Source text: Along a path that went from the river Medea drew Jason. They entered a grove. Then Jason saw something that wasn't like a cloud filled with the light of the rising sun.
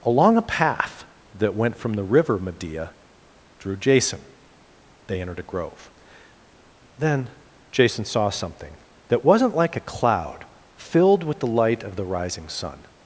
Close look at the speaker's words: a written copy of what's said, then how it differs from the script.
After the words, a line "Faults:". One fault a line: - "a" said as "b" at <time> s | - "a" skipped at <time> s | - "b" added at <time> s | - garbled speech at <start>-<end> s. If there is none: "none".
Along a path that went from the river Medea drew Jason. They entered a grove. Then Jason saw something that wasn't like a cloud filled with the light of the rising sun.
Faults:
none